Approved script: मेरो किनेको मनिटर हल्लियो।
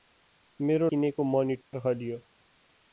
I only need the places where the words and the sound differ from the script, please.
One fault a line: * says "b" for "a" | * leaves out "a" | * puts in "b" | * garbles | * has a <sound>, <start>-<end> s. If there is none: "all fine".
* has a dropout, 1.6-1.7 s